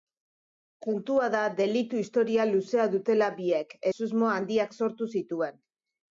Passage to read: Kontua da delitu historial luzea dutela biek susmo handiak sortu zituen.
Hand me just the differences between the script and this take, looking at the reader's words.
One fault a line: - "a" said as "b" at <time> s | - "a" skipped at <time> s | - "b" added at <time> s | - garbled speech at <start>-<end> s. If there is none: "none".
none